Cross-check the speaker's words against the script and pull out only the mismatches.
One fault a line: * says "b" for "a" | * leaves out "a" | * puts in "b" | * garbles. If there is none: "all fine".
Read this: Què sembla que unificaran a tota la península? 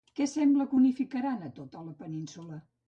all fine